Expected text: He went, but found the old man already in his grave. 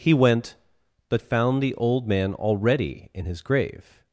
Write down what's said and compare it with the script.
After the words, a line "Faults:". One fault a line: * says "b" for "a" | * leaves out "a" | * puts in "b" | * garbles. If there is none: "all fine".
He went, but found the old man already in his grave.
Faults:
all fine